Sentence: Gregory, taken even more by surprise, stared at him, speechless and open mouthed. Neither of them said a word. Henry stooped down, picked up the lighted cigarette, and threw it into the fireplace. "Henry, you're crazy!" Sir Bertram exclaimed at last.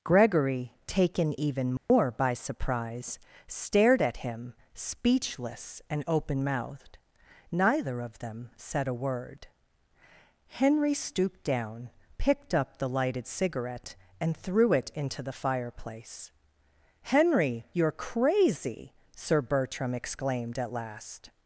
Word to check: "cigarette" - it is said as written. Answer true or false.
true